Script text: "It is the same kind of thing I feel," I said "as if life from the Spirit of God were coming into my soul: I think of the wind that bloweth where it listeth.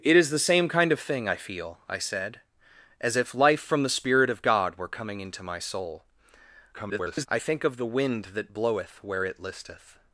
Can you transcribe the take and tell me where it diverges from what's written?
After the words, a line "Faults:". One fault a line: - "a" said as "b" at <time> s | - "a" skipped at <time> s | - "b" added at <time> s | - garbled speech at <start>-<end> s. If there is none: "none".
"It is the same kind of thing I feel," I said "as if life from the Spirit of God were coming into my soul: [garbled] I think of the wind that bloweth where it listeth.
Faults:
- garbled speech at 6.7-7.3 s